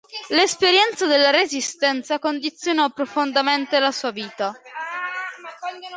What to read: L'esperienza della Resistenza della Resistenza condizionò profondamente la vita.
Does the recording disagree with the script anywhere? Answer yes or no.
yes